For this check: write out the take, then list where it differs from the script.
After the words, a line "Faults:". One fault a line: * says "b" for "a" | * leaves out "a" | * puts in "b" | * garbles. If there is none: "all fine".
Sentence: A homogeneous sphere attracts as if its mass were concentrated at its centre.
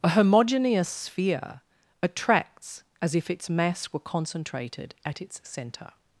A homogeneous sphere attracts as if its mass were concentrated at its centre.
Faults:
all fine